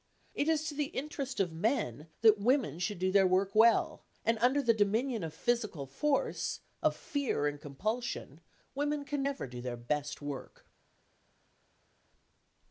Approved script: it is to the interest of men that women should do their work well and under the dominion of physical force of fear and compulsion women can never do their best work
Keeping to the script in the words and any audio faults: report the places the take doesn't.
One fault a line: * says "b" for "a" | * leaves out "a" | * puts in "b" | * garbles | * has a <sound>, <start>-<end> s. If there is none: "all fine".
all fine